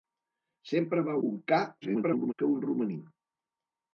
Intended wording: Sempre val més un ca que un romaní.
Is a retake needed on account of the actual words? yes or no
yes